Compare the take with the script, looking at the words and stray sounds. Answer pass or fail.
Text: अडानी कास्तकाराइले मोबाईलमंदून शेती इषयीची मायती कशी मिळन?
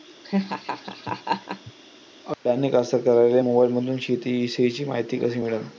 fail